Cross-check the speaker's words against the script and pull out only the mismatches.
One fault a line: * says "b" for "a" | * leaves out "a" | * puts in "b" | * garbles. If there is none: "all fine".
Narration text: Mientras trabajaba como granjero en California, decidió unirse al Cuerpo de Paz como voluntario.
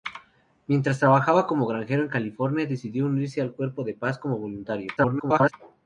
* garbles